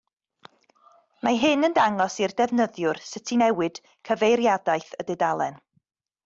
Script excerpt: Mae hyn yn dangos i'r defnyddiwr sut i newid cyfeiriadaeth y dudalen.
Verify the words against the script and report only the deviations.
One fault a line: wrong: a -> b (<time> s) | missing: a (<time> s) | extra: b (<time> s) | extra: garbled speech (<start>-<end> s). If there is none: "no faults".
no faults